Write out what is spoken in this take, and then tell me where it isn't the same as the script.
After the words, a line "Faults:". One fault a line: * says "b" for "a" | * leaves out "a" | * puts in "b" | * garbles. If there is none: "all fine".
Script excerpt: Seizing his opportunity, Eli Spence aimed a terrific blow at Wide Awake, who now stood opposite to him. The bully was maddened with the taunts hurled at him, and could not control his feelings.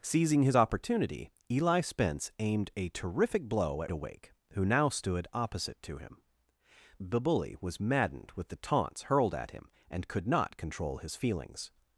Seizing his opportunity, Eli Spence aimed a terrific blow at Awake, who now stood opposite to him. The bully was maddened with the taunts hurled at him, and could not control his feelings.
Faults:
* leaves out "Wide"